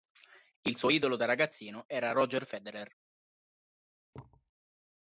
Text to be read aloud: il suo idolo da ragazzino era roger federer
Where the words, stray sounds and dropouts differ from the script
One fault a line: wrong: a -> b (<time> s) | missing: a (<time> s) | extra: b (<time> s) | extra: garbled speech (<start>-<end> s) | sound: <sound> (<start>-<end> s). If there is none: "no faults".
sound: thud (4.1-4.5 s)